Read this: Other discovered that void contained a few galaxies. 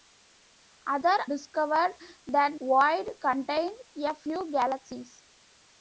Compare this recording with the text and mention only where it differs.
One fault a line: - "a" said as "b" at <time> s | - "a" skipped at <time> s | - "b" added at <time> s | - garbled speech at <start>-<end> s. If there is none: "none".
none